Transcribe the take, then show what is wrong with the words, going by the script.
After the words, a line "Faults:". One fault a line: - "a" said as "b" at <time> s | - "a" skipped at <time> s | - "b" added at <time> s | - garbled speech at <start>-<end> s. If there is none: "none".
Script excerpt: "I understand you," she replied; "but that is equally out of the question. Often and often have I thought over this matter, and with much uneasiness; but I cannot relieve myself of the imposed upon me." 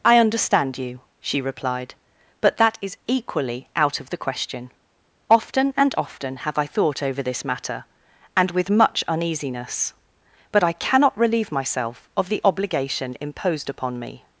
"I understand you," she replied; "but that is equally out of the question. Often and often have I thought over this matter, and with much uneasiness; but I cannot relieve myself of the obligation imposed upon me."
Faults:
- "obligation" added at 12.4 s